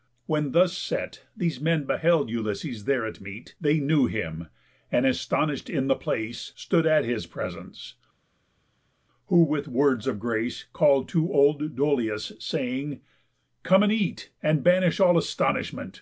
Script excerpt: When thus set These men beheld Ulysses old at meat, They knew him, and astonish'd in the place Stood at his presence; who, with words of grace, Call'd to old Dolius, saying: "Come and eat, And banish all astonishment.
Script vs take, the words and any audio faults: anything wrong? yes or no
yes